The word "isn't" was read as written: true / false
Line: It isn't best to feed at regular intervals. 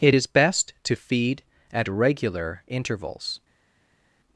false